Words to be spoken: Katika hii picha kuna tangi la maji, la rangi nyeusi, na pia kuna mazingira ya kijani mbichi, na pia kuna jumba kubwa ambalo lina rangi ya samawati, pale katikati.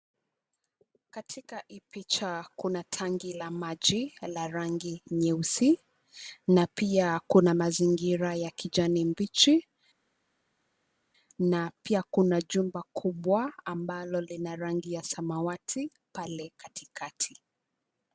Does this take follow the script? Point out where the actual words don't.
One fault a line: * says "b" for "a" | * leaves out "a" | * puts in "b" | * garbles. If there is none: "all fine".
all fine